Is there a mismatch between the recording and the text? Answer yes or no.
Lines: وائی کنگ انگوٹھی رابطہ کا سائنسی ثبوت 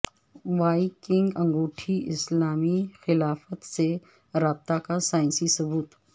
yes